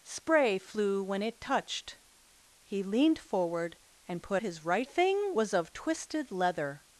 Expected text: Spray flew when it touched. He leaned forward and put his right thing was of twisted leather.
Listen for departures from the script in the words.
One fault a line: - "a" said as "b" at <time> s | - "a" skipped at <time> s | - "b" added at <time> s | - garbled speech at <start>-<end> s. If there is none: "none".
none